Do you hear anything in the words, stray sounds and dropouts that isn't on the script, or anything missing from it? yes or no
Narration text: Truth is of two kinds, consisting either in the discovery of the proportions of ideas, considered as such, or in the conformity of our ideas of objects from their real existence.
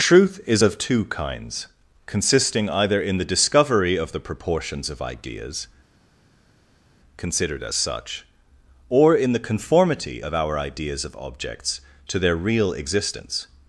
yes